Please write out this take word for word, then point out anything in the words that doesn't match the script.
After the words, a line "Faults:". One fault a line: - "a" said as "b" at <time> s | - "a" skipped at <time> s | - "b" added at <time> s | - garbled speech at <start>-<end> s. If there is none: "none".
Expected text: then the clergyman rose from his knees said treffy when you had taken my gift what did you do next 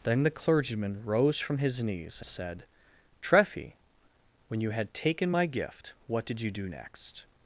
then the clergyman rose from his knees said treffy when you had taken my gift what did you do next
Faults:
none